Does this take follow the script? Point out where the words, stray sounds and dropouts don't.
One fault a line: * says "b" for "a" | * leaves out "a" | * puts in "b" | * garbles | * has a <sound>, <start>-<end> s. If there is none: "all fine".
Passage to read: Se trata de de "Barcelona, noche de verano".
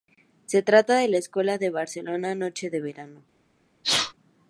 * puts in "la secuela"
* has a sneeze, 3.8-4.1 s